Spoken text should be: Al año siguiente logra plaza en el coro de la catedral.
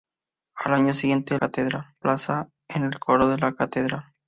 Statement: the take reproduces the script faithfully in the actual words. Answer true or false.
false